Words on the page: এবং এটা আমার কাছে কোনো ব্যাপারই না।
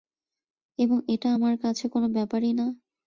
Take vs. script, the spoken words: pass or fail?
pass